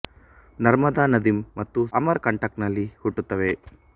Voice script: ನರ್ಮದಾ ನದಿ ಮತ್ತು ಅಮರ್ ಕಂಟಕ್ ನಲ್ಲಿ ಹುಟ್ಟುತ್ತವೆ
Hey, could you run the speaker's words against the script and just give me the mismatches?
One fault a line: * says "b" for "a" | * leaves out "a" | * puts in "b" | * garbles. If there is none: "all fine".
all fine